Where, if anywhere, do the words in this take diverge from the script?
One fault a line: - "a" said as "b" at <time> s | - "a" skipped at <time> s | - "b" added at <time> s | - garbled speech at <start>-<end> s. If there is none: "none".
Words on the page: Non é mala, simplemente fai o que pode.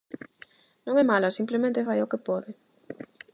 none